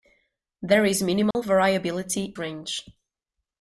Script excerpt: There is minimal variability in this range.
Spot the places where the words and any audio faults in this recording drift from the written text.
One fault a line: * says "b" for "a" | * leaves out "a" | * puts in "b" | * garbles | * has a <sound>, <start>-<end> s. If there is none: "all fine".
* has a dropout, 1.3-1.3 s
* leaves out "in this"